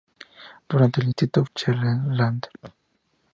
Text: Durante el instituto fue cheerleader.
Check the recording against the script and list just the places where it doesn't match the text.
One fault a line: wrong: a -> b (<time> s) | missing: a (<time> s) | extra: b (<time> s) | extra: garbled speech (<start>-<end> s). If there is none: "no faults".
missing: fue (1.4 s)